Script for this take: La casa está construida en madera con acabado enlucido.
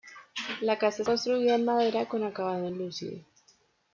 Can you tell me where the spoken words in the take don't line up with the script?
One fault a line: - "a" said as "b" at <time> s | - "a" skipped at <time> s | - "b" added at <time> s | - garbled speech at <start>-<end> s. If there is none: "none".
- "está" skipped at 1.0 s